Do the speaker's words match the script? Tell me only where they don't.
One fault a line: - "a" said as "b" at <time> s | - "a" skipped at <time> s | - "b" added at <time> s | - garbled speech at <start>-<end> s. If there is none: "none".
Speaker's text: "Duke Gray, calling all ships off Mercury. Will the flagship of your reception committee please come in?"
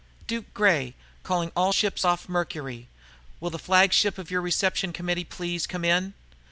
none